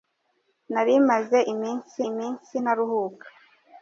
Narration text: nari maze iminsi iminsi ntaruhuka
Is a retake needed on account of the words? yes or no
no